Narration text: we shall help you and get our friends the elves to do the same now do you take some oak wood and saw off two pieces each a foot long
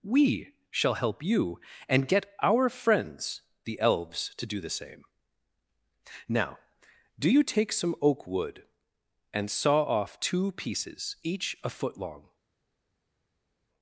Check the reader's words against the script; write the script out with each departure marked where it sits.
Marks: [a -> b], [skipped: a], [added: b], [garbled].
we shall help you and get our friends the elves to do the same now do you take some oak wood and saw off two pieces each a foot long